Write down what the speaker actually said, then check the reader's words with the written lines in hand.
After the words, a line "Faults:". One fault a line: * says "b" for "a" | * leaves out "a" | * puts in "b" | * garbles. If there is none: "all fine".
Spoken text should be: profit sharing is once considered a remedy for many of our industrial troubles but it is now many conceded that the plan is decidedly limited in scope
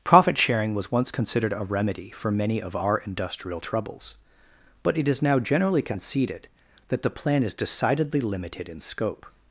profit sharing was once considered a remedy for many of our industrial troubles but it is now generally conceded that the plan is decidedly limited in scope
Faults:
* says "was" for "is"
* says "generally" for "many"